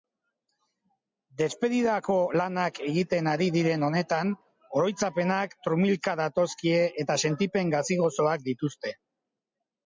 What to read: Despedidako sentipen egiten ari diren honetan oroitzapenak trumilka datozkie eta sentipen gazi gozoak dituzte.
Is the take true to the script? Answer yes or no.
no